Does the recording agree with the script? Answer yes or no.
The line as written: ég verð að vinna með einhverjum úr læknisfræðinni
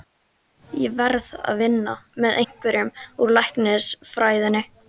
yes